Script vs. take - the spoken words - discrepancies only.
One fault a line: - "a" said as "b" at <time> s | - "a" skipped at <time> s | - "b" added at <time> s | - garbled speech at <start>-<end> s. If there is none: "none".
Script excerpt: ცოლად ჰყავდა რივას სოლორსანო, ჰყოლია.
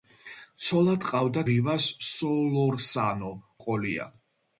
none